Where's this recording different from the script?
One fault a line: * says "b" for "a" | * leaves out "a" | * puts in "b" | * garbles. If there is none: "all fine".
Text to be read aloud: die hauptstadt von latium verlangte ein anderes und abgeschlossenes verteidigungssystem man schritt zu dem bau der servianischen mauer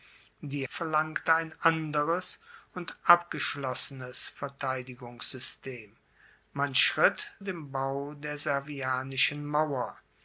* leaves out "hauptstadt von latium"
* leaves out "zu"